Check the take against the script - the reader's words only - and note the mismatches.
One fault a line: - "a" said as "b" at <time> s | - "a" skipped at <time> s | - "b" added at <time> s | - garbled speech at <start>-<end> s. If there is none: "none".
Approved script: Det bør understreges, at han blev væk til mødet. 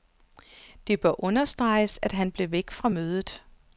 - "til" said as "fra" at 2.7 s